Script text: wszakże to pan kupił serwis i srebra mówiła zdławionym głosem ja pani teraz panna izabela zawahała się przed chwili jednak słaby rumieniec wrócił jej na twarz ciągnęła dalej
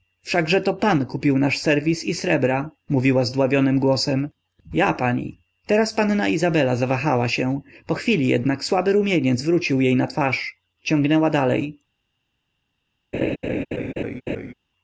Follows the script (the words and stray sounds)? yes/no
no